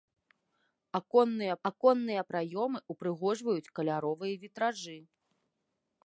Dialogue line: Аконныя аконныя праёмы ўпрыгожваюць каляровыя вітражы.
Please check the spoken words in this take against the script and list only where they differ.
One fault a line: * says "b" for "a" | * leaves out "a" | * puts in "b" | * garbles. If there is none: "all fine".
all fine